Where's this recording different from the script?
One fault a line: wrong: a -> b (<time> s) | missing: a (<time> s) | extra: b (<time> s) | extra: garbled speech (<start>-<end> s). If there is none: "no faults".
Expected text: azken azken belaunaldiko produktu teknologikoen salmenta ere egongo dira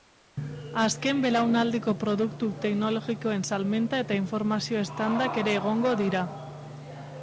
missing: azken (1.2 s)
extra: eta informazio standak (4.0 s)